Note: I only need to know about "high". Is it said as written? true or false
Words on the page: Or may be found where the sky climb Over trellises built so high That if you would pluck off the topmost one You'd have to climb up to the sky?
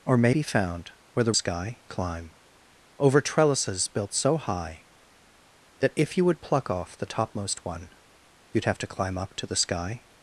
true